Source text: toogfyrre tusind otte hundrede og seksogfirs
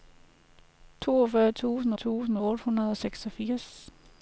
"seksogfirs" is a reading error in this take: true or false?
false